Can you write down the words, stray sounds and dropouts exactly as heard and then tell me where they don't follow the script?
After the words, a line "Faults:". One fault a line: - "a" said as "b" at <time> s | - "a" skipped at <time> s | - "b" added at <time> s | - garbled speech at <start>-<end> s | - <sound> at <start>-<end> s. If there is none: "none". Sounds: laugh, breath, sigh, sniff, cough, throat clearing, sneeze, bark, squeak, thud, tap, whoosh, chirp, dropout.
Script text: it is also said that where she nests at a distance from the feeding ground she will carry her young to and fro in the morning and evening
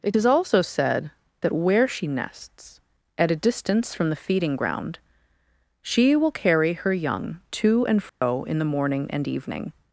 it is also said that where she nests at a distance from the feeding ground she will carry her young to and fro in the morning and evening
Faults:
- dropout at 8.1-8.2 s